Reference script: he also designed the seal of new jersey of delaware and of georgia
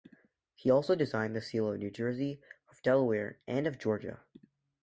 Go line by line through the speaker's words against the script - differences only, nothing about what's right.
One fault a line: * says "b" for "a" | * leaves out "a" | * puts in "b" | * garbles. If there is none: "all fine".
all fine